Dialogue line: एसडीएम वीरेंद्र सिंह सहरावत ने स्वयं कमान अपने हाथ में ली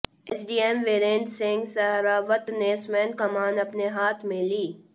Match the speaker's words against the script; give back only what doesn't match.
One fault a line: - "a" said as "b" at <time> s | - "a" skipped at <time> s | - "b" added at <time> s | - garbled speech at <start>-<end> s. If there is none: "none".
none